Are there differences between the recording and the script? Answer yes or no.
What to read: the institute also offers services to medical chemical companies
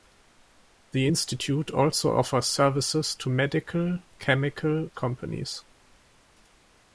no